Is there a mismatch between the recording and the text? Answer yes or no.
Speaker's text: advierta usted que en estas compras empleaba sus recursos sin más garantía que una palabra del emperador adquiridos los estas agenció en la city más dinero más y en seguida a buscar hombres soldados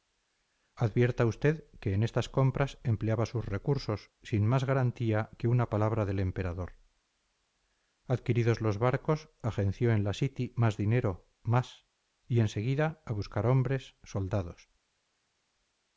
yes